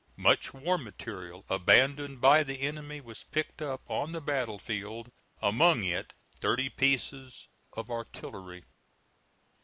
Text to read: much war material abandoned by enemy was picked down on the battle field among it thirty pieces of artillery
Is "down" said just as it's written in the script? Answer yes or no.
no